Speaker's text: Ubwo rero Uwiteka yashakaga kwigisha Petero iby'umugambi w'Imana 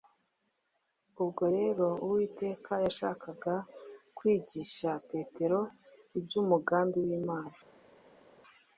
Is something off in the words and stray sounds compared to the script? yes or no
no